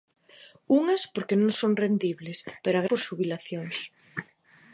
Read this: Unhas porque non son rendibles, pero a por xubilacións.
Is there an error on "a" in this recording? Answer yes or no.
no